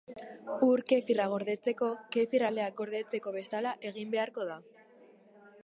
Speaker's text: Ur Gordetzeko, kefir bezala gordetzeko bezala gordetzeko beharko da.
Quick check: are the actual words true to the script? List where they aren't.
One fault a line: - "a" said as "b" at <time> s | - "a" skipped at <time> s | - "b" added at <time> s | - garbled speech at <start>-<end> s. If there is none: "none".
- "Kefirra" added at 0.9 s
- "bezala" said as "aleak" at 2.5 s
- "gordetzeko" said as "egin" at 3.9 s